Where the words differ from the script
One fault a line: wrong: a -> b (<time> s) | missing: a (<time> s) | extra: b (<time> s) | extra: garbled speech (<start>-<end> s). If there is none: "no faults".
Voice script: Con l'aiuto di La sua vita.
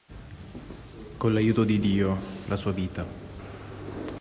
extra: Dio (1.8 s)